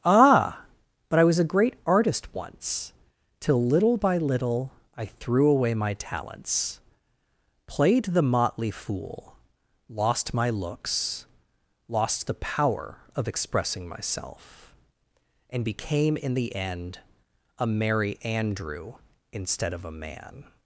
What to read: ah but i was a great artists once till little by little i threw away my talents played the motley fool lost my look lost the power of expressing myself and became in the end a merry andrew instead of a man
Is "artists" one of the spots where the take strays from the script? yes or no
yes